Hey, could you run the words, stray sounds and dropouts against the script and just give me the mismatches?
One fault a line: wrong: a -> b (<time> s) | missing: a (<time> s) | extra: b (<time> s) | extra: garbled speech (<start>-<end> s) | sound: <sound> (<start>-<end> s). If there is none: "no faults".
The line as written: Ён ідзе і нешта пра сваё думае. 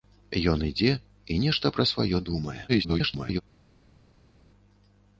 extra: garbled speech (2.7-3.4 s)